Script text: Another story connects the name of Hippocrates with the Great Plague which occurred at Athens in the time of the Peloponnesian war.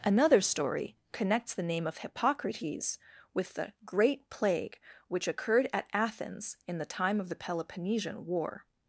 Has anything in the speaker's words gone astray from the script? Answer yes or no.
no